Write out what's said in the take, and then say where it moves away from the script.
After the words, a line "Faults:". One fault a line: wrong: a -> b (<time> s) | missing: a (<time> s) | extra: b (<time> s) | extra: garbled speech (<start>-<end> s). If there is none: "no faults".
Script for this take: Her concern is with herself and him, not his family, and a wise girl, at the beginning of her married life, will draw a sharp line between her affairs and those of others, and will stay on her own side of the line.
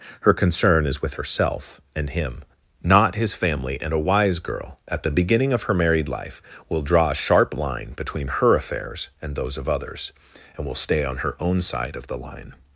Her concern is with herself and him, not his family, and a wise girl, at the beginning of her married life, will draw a sharp line between her affairs and those of others, and will stay on her own side of the line.
Faults:
no faults